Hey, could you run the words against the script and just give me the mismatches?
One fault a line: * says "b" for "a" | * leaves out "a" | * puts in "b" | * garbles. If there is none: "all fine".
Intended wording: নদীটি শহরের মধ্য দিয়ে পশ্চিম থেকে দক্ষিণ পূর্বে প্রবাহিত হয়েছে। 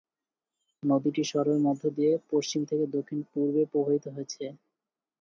all fine